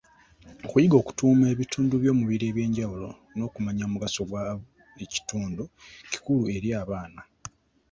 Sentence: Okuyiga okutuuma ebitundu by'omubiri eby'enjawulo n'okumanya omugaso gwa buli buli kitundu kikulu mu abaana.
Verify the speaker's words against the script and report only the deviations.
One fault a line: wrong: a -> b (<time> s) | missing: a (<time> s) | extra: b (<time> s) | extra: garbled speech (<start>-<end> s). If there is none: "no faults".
missing: buli (5.0 s)
wrong: mu -> eri (6.5 s)